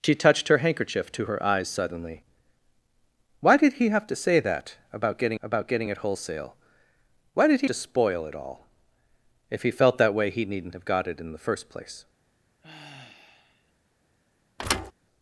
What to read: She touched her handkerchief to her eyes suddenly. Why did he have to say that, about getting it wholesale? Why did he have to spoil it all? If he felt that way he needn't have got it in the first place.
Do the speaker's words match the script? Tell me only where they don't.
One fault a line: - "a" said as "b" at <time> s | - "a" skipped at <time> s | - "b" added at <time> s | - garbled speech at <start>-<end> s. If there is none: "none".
- "about getting" added at 5.4 s
- "have" skipped at 7.7 s